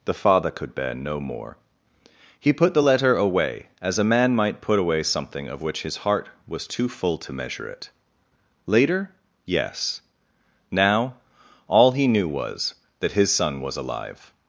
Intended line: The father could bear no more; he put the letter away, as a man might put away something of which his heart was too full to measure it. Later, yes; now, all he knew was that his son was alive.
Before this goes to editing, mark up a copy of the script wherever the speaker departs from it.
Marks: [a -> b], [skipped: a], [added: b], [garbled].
The father could bear no more; he put the letter away, as a man might put away something of which his heart was too full to measure it. Later, yes; now, all he knew was that his son was alive.